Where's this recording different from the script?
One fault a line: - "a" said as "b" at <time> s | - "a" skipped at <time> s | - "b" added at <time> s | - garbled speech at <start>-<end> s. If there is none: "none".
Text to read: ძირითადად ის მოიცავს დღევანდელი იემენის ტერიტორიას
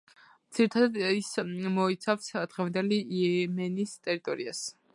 none